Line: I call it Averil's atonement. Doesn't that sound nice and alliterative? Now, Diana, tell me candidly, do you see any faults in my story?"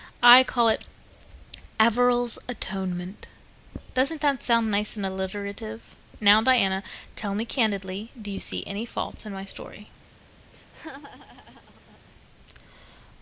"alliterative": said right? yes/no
yes